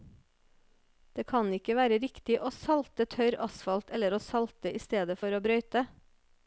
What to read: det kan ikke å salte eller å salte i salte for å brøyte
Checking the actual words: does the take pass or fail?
fail